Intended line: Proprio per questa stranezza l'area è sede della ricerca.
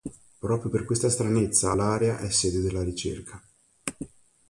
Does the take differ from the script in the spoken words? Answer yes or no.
no